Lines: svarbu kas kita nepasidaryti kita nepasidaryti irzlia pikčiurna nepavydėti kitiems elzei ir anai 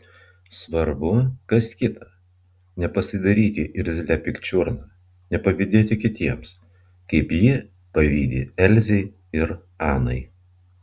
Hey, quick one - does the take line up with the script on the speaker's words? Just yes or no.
no